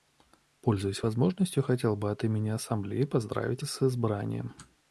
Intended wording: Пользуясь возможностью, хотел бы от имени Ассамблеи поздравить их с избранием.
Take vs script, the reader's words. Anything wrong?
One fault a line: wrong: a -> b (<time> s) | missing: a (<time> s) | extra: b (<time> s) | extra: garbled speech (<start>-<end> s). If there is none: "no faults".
missing: их (3.6 s)